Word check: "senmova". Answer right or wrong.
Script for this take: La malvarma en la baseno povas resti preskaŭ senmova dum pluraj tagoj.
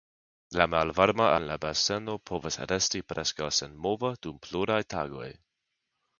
right